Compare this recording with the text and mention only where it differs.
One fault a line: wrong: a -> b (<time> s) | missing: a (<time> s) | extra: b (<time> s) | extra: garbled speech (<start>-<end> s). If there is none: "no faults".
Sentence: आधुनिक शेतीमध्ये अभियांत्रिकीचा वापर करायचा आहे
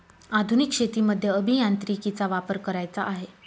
no faults